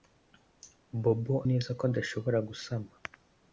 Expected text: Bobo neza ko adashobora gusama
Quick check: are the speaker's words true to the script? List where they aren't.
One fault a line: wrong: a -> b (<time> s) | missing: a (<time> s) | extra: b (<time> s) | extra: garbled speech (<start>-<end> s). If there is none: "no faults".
no faults